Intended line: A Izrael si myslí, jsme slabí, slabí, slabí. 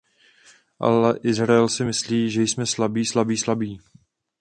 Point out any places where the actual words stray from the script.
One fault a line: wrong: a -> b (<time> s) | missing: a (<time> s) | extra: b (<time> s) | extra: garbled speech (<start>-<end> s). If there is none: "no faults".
wrong: A -> Ale (0.8 s)
extra: že (2.3 s)